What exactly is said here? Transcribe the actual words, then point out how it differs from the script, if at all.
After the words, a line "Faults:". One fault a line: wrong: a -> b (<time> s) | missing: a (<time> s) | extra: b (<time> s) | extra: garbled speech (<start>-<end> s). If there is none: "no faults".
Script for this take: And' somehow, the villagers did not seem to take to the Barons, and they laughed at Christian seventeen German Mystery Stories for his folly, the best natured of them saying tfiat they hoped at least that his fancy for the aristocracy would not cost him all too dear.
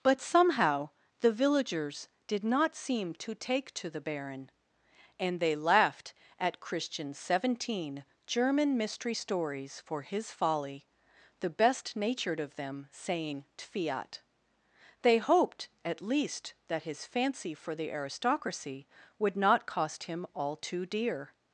But' somehow, the villagers did not seem to take to the Baron, and they laughed at Christian seventeen German Mystery Stories for his folly, the best natured of them saying tfiat they hoped at least that his fancy for the aristocracy would not cost him all too dear.
Faults:
wrong: And -> But (0.0 s)
wrong: Barons -> Baron (4.0 s)